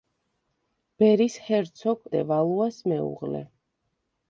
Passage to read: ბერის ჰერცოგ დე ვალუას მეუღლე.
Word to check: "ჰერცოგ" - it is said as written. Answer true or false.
true